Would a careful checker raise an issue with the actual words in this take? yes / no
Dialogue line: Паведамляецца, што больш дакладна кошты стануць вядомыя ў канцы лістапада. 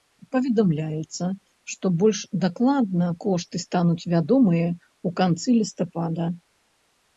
no